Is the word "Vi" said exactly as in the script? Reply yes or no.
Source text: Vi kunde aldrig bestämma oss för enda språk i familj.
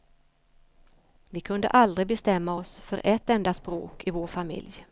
yes